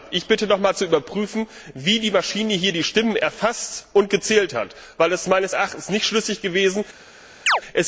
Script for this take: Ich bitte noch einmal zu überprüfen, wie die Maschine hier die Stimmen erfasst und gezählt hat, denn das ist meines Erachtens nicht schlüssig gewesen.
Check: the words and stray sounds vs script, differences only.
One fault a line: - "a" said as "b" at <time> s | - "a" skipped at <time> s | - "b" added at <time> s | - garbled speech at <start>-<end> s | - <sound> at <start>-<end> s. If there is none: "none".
- chirp at 7.5-7.6 s